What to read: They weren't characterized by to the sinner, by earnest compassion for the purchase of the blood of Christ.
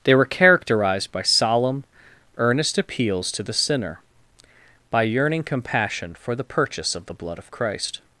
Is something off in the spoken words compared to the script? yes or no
yes